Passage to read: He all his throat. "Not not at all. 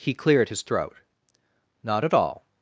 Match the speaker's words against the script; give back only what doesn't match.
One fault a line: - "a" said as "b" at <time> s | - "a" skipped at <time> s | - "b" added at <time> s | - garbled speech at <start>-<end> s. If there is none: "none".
- "all" said as "cleared" at 0.1 s
- "not" skipped at 2.1 s